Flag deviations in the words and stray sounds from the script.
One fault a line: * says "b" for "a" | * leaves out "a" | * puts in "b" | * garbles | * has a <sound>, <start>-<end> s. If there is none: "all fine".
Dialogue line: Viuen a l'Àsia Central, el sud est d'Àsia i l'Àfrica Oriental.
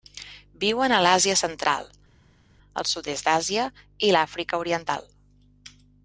all fine